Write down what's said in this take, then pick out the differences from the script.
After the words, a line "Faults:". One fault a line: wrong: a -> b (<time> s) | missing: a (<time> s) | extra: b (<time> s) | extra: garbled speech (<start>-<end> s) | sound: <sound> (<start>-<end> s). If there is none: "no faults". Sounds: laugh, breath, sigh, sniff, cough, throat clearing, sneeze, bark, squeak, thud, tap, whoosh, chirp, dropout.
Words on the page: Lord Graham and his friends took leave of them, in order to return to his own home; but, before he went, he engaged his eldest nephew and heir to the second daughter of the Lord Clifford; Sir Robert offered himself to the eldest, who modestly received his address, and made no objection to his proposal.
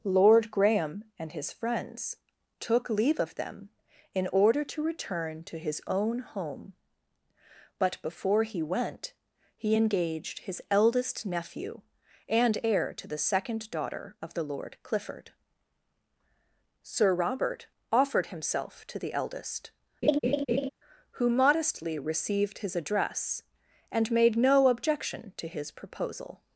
Lord Graham and his friends took leave of them, in order to return to his own home; but, before he went, he engaged his eldest nephew and heir to the second daughter of the Lord Clifford; Sir Robert offered himself to the eldest, who modestly received his address, and made no objection to his proposal.
Faults:
sound: laugh (20.0-20.7 s)